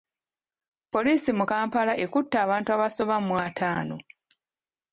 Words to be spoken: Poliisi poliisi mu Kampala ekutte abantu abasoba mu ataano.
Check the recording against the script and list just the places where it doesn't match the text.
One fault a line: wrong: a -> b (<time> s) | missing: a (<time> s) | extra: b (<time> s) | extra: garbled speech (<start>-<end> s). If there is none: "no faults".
missing: poliisi (1.3 s)